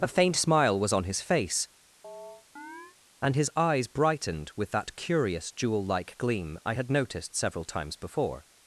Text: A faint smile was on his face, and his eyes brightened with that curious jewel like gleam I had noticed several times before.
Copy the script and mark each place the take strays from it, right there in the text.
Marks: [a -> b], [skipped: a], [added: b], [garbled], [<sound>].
A faint smile was on his face, [chirp] and his eyes brightened with that curious jewel like gleam I had noticed several times before.